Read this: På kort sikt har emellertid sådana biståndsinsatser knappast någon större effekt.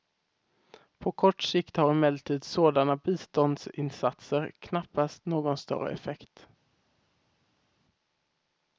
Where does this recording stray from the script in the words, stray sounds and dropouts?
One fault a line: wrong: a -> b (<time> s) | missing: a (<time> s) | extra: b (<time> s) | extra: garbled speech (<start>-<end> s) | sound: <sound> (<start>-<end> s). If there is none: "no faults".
no faults